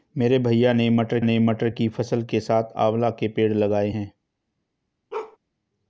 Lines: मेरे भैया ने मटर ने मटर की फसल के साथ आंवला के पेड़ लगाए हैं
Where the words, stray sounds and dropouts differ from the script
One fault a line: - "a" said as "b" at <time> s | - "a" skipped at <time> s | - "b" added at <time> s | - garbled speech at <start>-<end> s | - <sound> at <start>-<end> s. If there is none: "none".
- bark at 5.1-5.4 s